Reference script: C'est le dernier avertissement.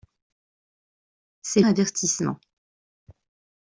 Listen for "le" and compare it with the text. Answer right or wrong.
wrong